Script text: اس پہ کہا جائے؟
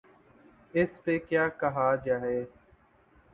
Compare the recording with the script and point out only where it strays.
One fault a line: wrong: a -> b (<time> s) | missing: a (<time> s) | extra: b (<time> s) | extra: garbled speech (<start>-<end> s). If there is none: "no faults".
extra: کیا (1.3 s)